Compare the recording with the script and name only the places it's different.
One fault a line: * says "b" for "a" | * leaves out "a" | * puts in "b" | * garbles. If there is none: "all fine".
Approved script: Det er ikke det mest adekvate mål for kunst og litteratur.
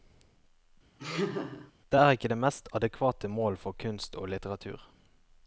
all fine